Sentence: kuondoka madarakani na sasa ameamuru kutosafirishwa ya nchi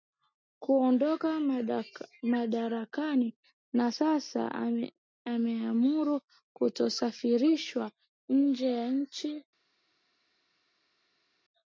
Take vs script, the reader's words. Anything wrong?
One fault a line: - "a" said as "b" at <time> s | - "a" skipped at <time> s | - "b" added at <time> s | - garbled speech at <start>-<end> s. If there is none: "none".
- "nje" added at 8.3 s